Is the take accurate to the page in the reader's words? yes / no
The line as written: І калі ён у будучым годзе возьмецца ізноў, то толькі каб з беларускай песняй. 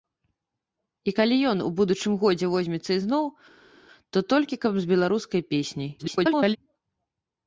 no